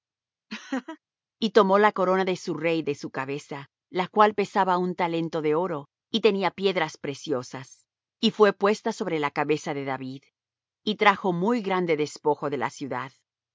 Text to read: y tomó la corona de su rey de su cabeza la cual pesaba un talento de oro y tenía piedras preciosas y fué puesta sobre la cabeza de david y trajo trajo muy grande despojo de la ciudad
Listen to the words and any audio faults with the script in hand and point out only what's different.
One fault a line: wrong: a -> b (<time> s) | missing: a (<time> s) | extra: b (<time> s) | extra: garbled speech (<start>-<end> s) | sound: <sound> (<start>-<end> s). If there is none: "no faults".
sound: laugh (0.5-1.0 s)
missing: trajo (11.3 s)